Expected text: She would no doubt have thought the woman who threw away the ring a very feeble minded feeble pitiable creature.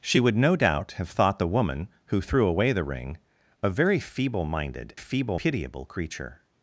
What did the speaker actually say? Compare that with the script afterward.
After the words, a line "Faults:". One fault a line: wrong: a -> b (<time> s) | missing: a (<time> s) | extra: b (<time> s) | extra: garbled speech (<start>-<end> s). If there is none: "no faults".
She would no doubt have thought the woman who threw away the ring a very feeble minded feeble pitiable creature.
Faults:
no faults